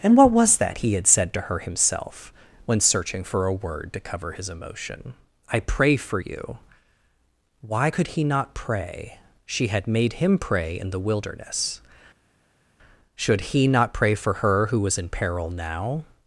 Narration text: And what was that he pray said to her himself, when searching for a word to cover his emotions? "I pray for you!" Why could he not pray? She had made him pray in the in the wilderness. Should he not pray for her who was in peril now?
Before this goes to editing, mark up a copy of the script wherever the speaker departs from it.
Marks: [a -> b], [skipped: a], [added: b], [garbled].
And what was that he [pray -> had] said to her himself, when searching for a word to cover his [emotions? -> emotion] "I pray for you!" Why could he not pray? She had made him pray in the [skipped: in the] wilderness. Should he not pray for her who was in peril now?